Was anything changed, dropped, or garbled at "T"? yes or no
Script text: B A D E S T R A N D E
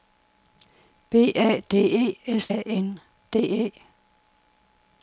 yes